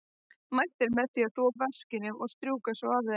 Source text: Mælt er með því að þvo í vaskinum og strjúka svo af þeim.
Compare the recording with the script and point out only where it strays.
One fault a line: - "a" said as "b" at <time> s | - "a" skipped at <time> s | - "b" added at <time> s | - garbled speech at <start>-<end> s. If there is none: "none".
none